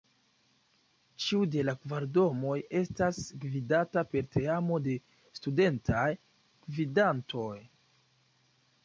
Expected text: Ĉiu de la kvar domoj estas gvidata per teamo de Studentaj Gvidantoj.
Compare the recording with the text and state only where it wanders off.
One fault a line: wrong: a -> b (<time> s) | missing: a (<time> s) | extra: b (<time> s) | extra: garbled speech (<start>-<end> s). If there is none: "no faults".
no faults